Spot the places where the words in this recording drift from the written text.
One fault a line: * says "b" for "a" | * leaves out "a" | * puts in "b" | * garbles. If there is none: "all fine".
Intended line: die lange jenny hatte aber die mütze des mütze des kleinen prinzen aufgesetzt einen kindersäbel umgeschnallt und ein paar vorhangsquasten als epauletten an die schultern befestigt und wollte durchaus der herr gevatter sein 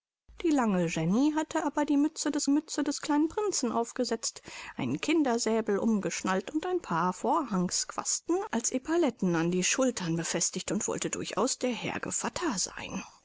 all fine